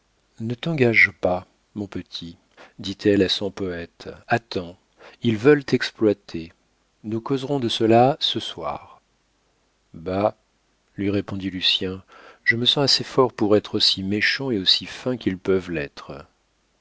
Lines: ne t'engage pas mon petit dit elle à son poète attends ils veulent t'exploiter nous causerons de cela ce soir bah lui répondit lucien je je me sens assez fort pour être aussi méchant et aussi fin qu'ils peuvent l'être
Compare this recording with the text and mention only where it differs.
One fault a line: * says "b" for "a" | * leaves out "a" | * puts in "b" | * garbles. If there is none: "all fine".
* leaves out "je"